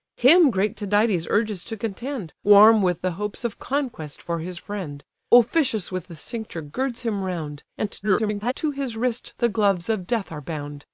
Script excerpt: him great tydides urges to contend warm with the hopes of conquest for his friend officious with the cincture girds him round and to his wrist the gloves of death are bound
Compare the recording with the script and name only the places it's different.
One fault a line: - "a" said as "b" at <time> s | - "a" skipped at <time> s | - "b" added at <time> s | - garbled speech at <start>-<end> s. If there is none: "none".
- garbled speech at 8.0-8.5 s